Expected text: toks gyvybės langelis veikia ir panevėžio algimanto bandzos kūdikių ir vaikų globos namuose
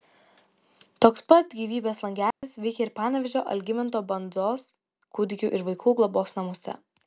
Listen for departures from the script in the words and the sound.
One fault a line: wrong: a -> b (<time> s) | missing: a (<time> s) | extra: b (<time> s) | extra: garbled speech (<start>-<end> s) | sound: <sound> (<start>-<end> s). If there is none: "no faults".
extra: pat (1.3 s)
sound: dropout (2.3-2.4 s)